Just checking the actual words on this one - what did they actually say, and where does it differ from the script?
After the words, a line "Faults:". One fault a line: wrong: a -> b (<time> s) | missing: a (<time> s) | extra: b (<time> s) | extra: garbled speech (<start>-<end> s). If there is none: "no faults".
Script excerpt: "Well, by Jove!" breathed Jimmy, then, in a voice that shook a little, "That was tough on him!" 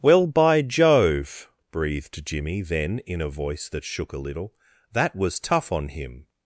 "Well, by Jove!" breathed Jimmy, then, in a voice that shook a little, "That was tough on him!"
Faults:
no faults